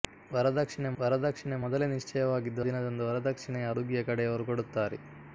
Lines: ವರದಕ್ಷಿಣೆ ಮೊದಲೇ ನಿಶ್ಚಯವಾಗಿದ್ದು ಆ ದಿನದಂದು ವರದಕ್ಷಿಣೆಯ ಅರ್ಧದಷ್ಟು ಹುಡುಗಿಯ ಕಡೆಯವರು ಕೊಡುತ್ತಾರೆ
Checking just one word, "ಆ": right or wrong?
wrong